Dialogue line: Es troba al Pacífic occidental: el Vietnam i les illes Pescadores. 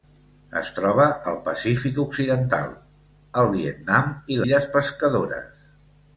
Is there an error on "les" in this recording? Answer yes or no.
yes